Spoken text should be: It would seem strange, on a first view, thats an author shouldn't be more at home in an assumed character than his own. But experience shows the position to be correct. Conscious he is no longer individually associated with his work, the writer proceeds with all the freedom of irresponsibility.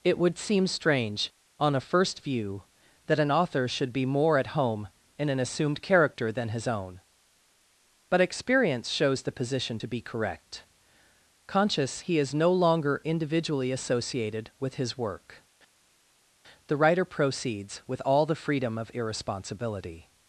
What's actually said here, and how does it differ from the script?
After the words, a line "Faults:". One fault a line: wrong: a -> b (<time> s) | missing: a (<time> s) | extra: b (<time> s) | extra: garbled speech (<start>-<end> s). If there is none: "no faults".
It would seem strange, on a first view, that an author should be more at home in an assumed character than his own. But experience shows the position to be correct. Conscious he is no longer individually associated with his work, the writer proceeds with all the freedom of irresponsibility.
Faults:
wrong: thats -> that (3.1 s)
wrong: shouldn't -> should (3.7 s)